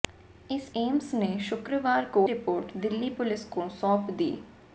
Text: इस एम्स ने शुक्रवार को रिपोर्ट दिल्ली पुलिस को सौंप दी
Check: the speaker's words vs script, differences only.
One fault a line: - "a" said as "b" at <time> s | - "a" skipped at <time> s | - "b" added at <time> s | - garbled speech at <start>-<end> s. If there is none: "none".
none